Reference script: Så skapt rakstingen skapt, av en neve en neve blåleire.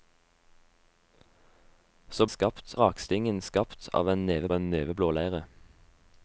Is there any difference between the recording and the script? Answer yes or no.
no